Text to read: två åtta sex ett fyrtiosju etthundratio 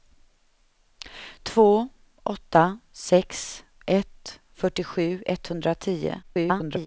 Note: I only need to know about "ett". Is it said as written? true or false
true